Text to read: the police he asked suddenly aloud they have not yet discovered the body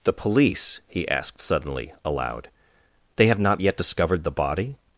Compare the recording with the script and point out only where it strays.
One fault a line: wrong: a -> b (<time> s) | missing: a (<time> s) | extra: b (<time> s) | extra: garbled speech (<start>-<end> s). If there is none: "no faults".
no faults